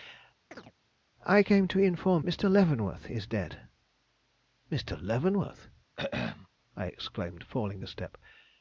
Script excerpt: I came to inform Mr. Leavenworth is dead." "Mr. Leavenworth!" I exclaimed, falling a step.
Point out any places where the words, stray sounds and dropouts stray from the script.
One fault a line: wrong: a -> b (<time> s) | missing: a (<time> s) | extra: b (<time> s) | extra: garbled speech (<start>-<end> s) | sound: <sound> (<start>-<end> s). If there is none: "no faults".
sound: chirp (0.5-0.7 s)
sound: throat clearing (6.0-6.5 s)